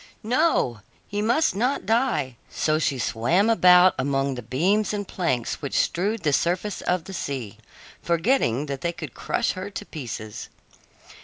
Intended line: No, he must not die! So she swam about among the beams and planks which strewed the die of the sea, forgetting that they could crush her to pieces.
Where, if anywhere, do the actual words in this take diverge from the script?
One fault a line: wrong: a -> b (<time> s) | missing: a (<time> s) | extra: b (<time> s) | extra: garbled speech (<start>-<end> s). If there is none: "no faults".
wrong: die -> surface (6.3 s)